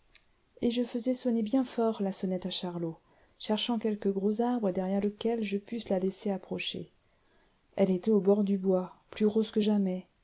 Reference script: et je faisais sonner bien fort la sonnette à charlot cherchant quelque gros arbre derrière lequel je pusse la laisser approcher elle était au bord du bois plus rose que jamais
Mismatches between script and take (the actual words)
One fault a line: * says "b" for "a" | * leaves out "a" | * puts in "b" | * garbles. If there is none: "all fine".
all fine